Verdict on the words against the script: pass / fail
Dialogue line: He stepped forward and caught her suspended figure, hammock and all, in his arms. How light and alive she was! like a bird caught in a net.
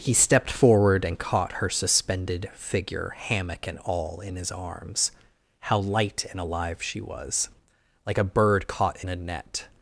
pass